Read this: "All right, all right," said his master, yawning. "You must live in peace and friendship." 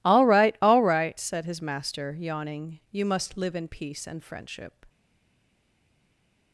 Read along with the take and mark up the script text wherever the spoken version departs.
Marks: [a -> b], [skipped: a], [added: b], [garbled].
"All right, all right," said his master, yawning. "You must live in peace and friendship."